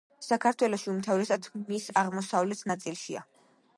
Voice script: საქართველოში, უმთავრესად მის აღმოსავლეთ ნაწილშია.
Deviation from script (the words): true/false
false